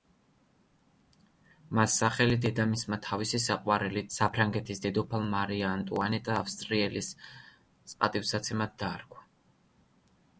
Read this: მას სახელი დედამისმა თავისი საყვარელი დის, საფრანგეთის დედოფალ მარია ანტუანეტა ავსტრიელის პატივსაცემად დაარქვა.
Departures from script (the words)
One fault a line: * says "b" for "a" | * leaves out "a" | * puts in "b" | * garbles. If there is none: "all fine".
* leaves out "დის"